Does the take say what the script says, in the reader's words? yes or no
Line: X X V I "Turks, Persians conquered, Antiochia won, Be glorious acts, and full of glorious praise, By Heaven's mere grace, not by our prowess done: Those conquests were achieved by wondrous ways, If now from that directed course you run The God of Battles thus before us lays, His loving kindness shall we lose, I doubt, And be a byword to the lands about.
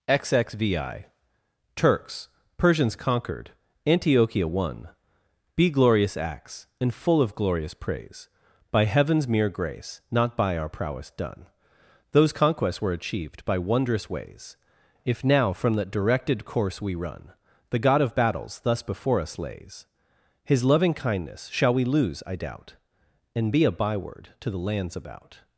no